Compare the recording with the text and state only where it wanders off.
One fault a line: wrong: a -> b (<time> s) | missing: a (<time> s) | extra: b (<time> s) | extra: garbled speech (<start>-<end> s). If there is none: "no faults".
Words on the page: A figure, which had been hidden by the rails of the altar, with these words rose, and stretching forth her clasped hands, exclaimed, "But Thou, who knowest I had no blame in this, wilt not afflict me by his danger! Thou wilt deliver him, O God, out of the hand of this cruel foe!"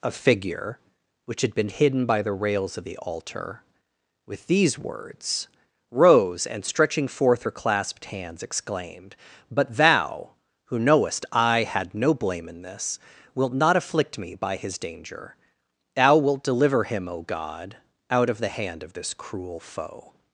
no faults